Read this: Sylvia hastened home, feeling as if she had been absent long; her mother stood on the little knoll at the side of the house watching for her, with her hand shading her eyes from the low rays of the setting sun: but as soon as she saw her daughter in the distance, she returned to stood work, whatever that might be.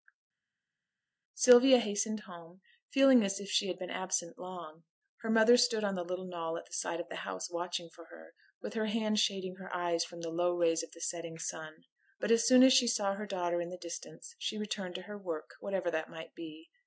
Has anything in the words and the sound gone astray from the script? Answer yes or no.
yes